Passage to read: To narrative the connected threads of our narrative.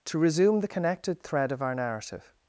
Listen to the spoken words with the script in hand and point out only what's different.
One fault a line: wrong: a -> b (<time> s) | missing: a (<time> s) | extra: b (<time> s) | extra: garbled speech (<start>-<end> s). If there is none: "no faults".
wrong: narrative -> resume (0.2 s)
wrong: threads -> thread (1.2 s)